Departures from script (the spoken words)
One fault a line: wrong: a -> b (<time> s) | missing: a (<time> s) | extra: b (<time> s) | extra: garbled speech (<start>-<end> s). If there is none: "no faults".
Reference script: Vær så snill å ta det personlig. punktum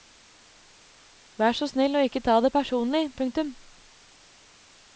extra: ikke (2.0 s)